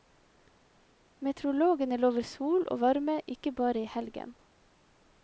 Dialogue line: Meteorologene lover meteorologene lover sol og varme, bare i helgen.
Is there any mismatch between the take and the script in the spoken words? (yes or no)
yes